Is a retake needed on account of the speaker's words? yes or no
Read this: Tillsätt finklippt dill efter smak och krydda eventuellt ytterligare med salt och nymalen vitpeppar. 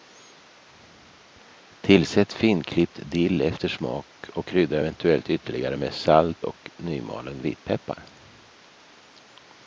no